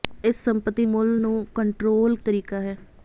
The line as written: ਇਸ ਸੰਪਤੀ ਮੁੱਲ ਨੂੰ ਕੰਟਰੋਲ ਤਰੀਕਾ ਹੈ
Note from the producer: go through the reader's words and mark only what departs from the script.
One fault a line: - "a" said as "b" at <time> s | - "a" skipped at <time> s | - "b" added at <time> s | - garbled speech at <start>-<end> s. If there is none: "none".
none